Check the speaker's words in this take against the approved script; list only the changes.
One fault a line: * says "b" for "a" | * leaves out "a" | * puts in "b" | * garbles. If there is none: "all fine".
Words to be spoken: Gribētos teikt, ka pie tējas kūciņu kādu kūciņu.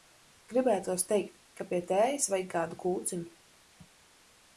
* says "vajag" for "kūciņu"